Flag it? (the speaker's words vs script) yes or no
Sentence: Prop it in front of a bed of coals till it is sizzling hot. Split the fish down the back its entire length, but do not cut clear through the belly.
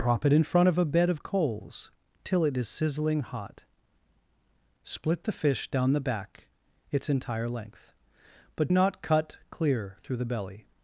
yes